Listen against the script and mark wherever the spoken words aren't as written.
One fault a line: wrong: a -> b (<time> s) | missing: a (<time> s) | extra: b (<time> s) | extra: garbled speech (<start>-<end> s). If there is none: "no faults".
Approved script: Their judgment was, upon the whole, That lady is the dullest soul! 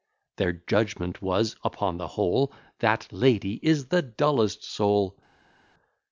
no faults